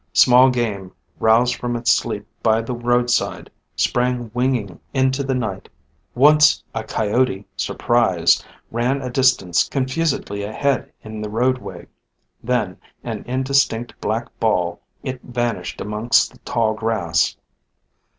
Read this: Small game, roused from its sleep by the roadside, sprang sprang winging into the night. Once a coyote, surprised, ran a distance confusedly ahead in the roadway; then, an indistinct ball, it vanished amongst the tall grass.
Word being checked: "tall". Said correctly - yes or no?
yes